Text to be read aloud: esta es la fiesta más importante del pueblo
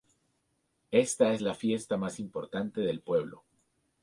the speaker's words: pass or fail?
pass